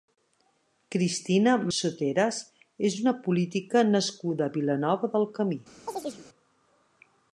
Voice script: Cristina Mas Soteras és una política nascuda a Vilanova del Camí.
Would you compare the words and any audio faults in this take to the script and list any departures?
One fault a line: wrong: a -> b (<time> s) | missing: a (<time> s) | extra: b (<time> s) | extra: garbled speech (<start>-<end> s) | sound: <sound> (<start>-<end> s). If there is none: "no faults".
missing: Mas (1.5 s)
sound: chirp (5.9-6.3 s)